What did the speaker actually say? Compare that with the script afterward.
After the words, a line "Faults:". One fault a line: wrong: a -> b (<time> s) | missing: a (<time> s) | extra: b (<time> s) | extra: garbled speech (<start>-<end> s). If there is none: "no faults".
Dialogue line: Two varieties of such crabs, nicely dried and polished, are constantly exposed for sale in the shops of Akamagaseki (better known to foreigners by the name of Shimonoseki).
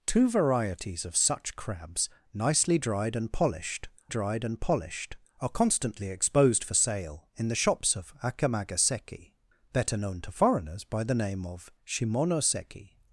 Two varieties of such crabs, nicely dried and polished dried and polished, are constantly exposed for sale in the shops of Akamagaseki (better known to foreigners by the name of Shimonoseki).
Faults:
extra: dried and polished (4.1 s)